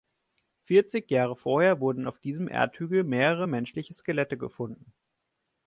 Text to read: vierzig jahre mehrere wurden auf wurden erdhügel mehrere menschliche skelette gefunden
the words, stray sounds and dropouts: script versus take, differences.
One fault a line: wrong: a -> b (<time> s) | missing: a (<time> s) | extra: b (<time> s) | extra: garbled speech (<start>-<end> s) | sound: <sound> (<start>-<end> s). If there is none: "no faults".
wrong: mehrere -> vorher (1.4 s)
wrong: wurden -> diesem (2.2 s)